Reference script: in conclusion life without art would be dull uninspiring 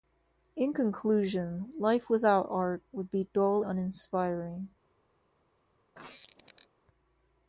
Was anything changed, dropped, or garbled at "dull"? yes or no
no